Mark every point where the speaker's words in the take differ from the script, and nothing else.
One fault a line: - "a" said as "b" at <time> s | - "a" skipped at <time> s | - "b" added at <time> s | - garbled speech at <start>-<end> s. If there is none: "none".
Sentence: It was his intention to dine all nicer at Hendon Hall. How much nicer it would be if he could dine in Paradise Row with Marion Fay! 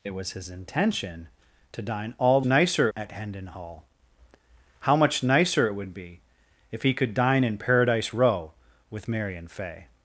none